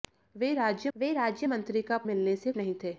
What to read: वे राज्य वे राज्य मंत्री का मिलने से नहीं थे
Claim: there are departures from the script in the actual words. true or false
false